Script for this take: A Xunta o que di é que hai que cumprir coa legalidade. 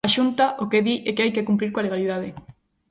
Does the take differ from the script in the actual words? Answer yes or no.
no